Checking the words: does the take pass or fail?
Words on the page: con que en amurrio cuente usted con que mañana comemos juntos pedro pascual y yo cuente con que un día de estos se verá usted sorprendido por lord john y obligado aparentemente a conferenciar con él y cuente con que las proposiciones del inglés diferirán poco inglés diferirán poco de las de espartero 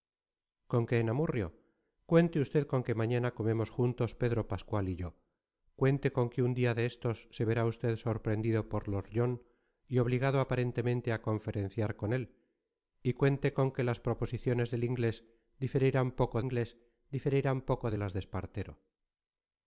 pass